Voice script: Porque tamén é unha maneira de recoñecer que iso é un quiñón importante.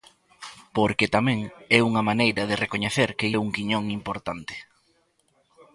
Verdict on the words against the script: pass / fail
fail